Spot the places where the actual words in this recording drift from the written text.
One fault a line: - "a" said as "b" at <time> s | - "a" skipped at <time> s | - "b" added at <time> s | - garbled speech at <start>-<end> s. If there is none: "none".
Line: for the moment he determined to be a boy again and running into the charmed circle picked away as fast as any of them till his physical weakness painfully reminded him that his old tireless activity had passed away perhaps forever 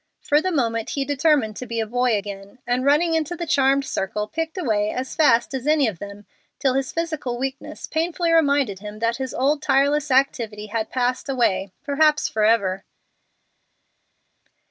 none